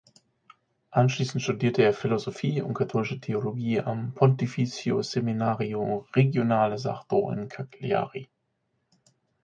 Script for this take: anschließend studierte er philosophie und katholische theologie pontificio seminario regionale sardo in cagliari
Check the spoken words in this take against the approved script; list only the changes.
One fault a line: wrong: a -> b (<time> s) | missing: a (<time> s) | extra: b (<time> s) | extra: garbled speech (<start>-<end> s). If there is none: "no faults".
extra: am (3.8 s)